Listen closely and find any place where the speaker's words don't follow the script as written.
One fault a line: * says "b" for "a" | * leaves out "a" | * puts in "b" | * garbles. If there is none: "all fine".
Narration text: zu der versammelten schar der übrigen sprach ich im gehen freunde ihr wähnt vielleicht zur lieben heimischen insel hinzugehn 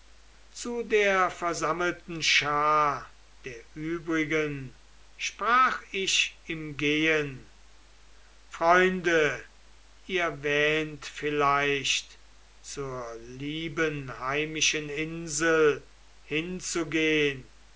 all fine